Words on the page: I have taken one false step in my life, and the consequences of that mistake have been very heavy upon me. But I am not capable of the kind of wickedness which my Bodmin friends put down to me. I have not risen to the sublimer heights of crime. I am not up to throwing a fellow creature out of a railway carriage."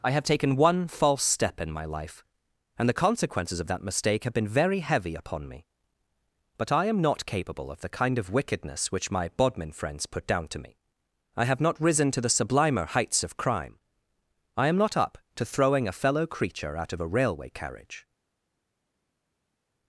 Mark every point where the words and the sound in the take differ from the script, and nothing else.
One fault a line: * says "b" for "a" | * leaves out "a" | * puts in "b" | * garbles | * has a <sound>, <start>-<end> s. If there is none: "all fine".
all fine